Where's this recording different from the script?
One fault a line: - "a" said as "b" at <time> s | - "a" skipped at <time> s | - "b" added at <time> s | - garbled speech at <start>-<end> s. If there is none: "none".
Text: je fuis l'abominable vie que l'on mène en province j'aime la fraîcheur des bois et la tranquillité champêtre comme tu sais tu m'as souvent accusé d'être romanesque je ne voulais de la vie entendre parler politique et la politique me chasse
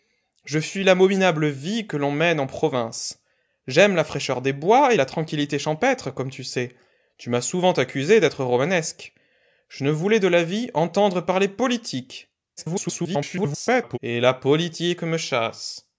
- garbled speech at 12.6-14.0 s